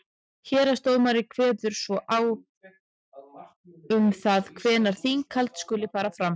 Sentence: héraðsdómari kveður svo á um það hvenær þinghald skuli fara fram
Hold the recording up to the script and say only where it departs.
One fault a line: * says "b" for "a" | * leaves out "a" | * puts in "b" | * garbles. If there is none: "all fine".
all fine